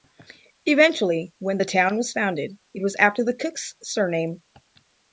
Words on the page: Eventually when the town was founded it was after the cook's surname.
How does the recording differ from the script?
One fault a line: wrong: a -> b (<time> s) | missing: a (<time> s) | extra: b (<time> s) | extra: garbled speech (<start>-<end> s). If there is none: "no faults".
no faults